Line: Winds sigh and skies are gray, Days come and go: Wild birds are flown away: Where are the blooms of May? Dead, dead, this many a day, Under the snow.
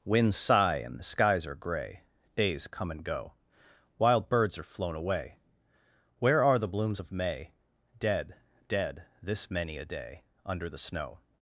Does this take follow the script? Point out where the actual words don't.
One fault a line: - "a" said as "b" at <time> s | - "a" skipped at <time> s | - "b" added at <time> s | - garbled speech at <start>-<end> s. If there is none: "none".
- "the" added at 1.0 s